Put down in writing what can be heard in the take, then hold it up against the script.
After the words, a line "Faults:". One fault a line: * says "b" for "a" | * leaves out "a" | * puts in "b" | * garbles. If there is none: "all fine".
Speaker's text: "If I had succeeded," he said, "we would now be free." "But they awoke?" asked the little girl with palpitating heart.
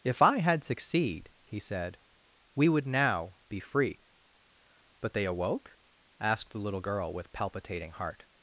"If I had succeed," he said, "we would now be free." "But they awoke?" asked the little girl with palpitating heart.
Faults:
* says "succeed" for "succeeded"